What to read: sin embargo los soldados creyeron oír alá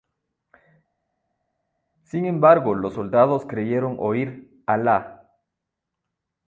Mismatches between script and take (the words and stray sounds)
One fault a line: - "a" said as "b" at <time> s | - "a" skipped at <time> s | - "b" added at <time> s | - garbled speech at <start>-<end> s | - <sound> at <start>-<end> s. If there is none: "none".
none